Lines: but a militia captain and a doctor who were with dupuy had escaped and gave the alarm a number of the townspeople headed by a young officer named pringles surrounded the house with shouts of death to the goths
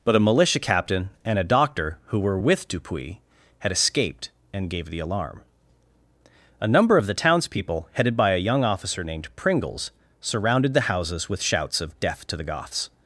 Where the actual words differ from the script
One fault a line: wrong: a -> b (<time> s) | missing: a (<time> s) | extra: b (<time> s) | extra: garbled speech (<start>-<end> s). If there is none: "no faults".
wrong: house -> houses (10.8 s)